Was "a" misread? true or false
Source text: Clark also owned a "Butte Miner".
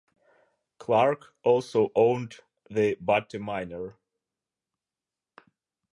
true